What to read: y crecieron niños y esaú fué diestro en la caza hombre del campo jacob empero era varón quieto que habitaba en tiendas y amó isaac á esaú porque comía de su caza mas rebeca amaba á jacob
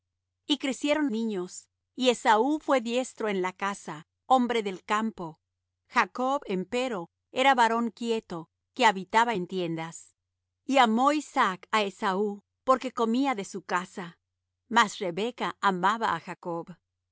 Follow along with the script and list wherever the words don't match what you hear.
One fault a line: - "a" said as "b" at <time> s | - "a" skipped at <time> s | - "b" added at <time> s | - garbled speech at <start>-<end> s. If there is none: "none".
none